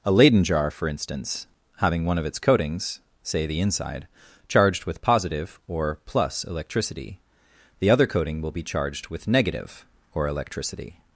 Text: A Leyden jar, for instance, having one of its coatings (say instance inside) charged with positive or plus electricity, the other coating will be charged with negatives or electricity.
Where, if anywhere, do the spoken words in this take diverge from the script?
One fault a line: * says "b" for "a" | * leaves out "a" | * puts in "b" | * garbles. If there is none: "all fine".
* says "the" for "instance"
* says "negative" for "negatives"